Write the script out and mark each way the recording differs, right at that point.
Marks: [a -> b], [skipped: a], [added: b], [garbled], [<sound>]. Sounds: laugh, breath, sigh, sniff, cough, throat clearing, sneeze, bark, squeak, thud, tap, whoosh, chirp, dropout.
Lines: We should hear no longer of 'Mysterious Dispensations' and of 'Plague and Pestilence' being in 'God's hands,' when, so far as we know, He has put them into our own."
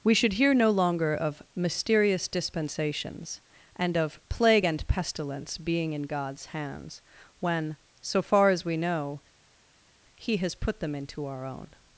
We should hear no longer of 'Mysterious Dispensations' and of 'Plague and Pestilence' being in 'God's hands,' when, so far as we know, He has put them into our own."